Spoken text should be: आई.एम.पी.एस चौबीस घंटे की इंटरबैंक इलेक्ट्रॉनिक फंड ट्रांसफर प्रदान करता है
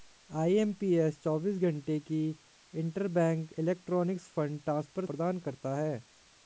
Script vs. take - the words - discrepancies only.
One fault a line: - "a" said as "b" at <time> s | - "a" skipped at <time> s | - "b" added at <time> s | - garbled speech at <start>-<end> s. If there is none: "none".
none